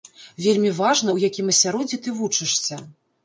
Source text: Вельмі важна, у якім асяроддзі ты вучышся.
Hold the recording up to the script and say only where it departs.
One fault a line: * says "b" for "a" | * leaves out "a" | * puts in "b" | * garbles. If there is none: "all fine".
all fine